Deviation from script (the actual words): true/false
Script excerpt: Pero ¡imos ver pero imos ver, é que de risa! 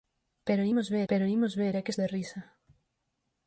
false